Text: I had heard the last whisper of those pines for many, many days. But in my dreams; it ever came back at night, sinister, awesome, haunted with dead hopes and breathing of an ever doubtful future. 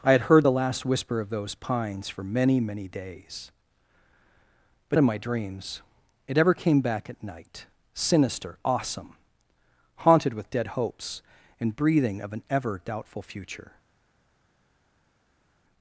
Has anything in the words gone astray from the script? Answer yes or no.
no